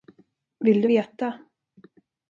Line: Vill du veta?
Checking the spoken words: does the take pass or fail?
pass